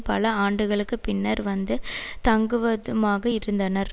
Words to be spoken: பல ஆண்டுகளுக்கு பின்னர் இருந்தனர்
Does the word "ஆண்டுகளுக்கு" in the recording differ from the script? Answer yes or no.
no